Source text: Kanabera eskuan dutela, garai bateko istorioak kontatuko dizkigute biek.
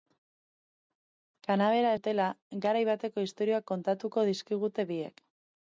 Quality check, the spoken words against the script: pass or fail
fail